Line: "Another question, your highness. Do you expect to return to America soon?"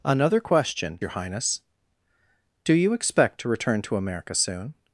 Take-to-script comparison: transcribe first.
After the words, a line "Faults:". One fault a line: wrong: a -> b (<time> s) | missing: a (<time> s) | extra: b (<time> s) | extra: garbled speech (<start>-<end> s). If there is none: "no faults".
"Another question, your highness. Do you expect to return to America soon?"
Faults:
no faults